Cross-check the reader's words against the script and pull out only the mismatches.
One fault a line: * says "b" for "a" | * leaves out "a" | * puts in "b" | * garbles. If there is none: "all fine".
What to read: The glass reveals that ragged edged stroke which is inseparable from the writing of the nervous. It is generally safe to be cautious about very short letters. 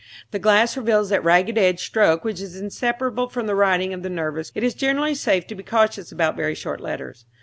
all fine